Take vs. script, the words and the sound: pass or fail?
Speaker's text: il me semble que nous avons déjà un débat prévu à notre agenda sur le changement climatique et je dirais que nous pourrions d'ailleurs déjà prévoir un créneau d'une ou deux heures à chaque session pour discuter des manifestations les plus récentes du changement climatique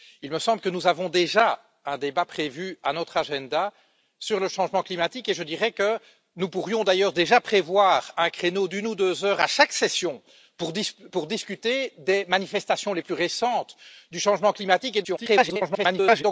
fail